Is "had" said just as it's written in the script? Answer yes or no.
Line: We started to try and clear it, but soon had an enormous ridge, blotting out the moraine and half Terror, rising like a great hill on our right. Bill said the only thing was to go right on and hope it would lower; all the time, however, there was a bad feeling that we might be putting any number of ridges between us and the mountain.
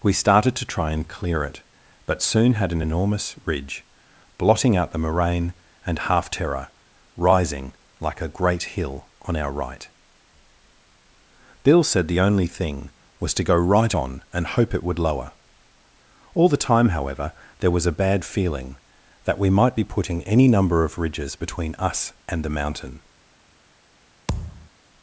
yes